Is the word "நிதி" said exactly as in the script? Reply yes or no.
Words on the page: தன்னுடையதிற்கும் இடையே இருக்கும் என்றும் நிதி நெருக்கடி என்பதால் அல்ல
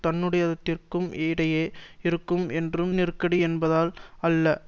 no